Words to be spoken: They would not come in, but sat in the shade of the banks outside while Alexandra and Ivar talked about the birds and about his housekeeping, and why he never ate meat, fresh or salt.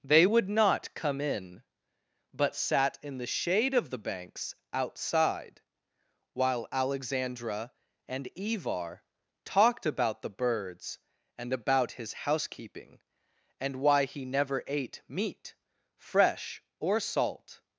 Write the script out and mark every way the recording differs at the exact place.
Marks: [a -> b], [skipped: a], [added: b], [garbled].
They would not come in, but sat in the shade of the banks outside while Alexandra and Ivar talked about the birds and about his housekeeping, and why he never ate meat, fresh or salt.